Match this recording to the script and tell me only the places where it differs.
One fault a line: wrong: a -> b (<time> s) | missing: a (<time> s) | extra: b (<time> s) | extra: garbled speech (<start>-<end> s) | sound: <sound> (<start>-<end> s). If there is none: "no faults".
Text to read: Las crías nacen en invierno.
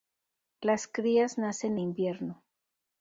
missing: en (1.8 s)